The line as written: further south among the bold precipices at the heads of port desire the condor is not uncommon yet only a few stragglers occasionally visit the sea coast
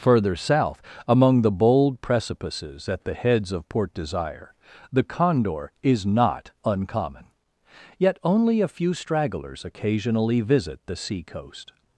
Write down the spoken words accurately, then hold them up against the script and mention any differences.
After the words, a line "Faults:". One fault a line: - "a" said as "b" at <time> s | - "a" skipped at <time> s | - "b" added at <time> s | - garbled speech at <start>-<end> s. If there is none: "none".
further south among the bold precipices at the heads of port desire the condor is not uncommon yet only a few stragglers occasionally visit the sea coast
Faults:
none